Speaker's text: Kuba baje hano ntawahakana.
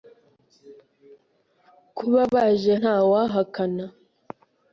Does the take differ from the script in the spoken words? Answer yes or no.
yes